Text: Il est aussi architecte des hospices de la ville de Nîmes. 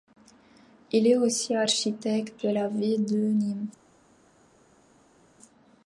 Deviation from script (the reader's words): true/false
true